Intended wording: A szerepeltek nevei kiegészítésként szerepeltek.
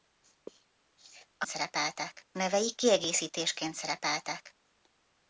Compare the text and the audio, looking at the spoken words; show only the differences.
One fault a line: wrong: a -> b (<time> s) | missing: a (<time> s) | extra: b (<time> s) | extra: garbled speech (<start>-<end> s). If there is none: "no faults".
no faults